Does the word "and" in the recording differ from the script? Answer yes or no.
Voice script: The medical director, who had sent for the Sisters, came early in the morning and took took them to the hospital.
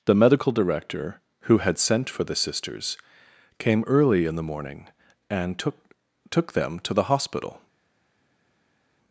no